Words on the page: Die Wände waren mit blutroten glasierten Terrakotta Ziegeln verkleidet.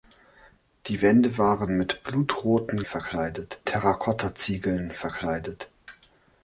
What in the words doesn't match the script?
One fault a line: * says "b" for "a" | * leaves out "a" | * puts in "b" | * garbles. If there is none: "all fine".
* says "verkleidet" for "glasierten"